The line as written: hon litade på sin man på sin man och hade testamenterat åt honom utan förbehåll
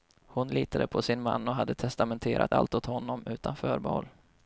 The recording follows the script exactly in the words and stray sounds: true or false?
false